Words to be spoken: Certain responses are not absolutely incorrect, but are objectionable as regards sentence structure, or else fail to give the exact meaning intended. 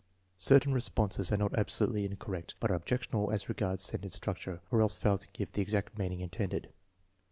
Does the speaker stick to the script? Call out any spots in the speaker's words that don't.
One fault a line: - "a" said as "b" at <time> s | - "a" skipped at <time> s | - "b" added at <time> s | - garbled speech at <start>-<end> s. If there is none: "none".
none